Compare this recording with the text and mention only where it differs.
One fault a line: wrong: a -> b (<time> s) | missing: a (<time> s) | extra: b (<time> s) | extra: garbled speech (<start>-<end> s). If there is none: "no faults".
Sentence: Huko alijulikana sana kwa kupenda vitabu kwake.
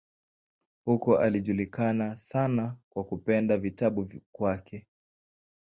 no faults